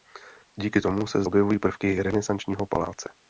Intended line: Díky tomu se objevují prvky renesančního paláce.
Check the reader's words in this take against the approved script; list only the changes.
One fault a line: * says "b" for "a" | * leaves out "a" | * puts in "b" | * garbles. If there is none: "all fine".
all fine